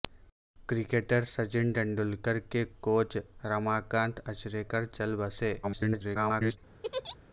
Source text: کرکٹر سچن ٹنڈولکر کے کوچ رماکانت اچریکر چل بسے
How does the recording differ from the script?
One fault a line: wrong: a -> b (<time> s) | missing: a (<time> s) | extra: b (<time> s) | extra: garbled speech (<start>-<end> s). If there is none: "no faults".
extra: garbled speech (5.6-6.6 s)